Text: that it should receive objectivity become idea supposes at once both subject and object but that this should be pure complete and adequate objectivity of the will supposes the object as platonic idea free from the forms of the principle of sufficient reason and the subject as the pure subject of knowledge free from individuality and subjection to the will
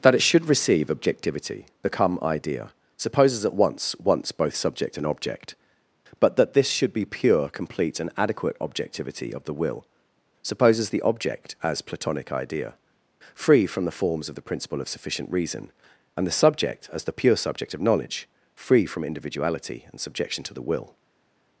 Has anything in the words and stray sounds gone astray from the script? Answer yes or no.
yes